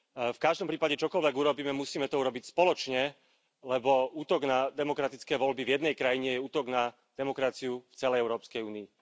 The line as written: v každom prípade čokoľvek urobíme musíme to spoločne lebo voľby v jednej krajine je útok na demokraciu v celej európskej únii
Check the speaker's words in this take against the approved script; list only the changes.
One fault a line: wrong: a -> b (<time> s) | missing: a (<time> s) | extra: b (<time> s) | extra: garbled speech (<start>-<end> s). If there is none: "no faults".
extra: urobiť (2.2 s)
extra: útok na demokratické (4.1 s)